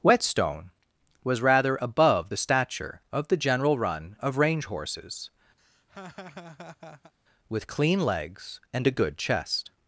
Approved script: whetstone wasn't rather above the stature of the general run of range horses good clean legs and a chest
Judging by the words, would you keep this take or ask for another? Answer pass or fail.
fail